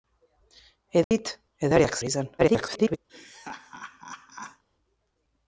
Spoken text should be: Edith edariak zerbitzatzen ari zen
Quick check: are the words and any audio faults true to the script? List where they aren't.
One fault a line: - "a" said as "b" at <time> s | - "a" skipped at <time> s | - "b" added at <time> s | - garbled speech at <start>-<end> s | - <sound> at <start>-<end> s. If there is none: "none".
- dropout at 1.0-1.1 s
- "zerbitzatzen" skipped at 2.0 s
- garbled speech at 2.4-3.0 s
- laugh at 3.1-4.6 s